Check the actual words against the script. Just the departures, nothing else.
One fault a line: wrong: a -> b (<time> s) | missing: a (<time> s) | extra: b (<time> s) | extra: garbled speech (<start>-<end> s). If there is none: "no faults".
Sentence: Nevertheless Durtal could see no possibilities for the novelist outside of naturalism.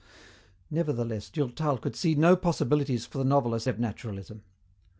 missing: outside (3.7 s)